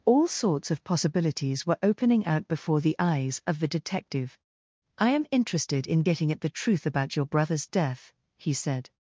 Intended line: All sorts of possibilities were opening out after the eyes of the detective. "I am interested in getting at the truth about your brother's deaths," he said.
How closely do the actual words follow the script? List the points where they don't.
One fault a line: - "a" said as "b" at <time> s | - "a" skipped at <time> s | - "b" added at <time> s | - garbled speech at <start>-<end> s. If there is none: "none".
- "after" said as "before" at 2.5 s
- "deaths" said as "death" at 7.7 s